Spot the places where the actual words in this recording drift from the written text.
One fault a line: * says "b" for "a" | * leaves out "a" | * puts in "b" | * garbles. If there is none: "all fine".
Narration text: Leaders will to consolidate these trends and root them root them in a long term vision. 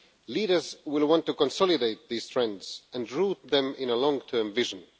* puts in "want"
* leaves out "root them"